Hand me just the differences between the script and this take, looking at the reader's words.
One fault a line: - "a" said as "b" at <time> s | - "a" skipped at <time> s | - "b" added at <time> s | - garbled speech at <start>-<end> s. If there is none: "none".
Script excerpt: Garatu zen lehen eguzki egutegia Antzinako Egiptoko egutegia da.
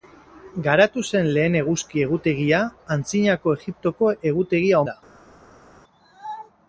none